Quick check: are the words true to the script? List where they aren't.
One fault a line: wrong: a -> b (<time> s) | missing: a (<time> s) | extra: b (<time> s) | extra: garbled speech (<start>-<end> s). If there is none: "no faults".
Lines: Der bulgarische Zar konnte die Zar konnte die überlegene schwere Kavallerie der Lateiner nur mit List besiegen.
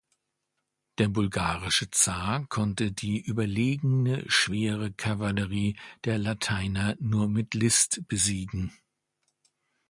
missing: Zar konnte die (3.2 s)